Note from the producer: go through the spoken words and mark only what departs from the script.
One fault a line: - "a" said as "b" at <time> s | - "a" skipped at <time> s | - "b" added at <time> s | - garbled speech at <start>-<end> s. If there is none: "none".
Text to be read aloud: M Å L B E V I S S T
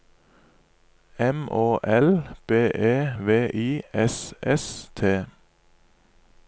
none